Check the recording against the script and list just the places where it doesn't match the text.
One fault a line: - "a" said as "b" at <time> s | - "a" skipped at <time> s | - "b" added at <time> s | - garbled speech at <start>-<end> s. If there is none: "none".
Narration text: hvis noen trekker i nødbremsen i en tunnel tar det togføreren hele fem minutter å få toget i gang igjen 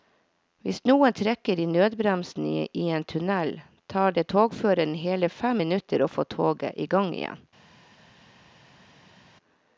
none